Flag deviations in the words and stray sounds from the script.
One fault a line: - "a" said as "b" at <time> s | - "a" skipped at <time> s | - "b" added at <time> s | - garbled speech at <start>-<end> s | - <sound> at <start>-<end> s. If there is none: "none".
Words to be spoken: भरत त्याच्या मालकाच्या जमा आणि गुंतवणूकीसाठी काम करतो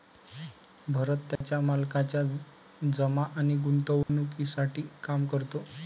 - dropout at 1.4-1.4 s
- dropout at 4.0-4.1 s